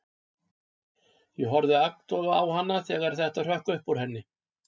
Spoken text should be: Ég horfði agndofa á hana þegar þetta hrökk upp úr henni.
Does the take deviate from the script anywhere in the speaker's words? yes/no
no